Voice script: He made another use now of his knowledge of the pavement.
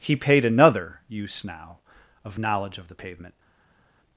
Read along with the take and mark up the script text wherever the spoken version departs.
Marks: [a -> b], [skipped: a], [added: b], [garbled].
He [made -> paid] another use now of [skipped: his] knowledge of the pavement.